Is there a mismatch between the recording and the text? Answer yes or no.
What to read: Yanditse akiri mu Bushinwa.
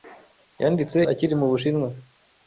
no